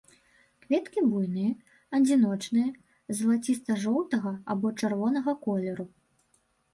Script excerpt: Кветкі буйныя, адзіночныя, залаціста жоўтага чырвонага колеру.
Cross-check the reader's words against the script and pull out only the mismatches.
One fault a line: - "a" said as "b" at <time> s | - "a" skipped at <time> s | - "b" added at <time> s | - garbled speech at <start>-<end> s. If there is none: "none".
- "або" added at 4.6 s